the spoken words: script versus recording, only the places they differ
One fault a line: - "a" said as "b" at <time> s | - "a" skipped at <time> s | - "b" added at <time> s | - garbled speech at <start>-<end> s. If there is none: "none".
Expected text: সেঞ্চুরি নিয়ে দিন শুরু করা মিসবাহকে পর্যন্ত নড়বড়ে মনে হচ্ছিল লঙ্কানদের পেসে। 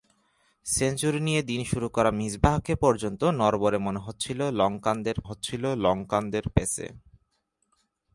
- "হচ্ছিল লঙ্কানদের" added at 5.2 s